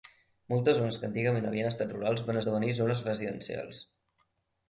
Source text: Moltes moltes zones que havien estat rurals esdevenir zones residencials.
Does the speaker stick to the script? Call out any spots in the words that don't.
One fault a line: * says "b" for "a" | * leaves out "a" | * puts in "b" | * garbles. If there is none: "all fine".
* leaves out "moltes"
* puts in "antigament"
* puts in "van"